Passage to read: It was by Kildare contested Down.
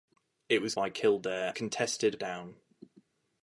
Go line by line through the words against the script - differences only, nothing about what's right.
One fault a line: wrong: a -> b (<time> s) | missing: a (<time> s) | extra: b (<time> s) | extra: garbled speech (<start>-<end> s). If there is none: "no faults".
no faults